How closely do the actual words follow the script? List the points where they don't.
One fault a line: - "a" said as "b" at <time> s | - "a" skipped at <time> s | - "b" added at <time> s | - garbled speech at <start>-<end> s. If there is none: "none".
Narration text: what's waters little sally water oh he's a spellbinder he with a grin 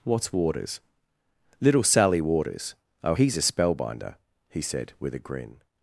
- "water" said as "waters" at 2.2 s
- "said" added at 4.6 s